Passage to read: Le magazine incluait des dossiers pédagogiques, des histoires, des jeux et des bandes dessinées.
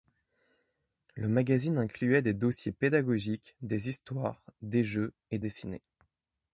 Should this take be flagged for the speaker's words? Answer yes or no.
yes